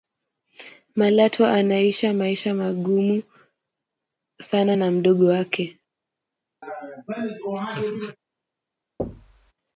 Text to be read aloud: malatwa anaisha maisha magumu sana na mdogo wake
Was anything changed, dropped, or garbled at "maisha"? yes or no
no